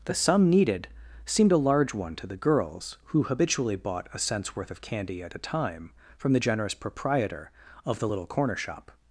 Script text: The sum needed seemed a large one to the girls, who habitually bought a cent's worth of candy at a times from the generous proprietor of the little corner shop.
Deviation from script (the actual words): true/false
true